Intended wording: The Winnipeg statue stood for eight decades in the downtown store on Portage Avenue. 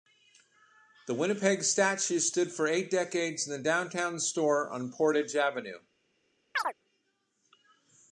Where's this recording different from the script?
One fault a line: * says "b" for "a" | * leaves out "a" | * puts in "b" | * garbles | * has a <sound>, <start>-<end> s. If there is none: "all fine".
* has a chirp, 6.5-6.7 s